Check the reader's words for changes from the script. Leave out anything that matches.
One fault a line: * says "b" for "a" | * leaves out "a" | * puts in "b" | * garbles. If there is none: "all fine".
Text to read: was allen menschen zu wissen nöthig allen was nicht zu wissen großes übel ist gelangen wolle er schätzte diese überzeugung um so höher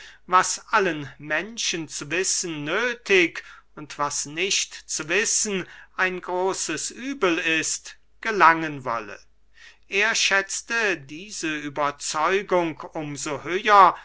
* says "und" for "allen"
* puts in "ein"